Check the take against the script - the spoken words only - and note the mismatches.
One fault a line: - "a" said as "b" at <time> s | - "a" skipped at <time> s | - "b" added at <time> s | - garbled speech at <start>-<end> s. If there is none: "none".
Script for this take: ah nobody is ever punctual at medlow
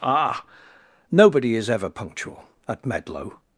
none